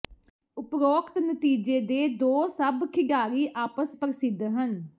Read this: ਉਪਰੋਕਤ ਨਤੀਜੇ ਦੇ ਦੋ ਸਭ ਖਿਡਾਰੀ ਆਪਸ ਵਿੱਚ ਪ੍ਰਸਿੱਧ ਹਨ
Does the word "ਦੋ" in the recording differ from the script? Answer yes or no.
no